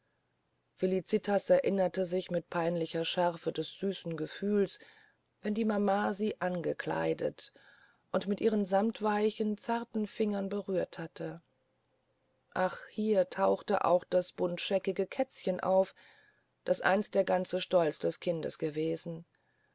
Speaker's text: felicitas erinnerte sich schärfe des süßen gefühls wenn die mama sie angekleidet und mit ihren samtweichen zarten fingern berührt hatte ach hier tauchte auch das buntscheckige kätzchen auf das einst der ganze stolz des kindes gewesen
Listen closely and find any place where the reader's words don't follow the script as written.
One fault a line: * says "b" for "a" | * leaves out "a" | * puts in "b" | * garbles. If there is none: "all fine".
* puts in "mit peinlicher"